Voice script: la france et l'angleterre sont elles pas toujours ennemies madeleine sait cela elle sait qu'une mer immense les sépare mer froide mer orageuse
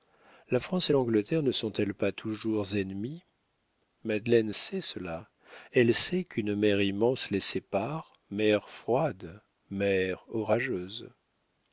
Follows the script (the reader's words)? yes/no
no